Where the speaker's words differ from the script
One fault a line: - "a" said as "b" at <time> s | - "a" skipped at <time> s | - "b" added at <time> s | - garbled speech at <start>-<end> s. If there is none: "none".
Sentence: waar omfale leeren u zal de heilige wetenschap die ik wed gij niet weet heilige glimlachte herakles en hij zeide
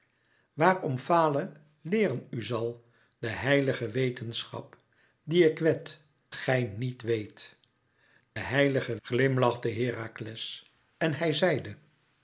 none